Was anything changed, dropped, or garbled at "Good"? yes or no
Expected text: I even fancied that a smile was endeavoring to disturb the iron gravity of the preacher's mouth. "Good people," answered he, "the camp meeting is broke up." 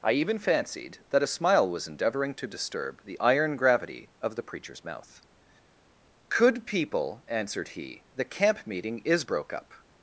yes